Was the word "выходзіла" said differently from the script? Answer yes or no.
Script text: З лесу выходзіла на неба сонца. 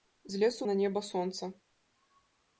yes